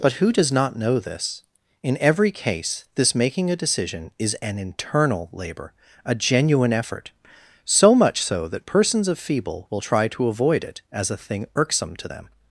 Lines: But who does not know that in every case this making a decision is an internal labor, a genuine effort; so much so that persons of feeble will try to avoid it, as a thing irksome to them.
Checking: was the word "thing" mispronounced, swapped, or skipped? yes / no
no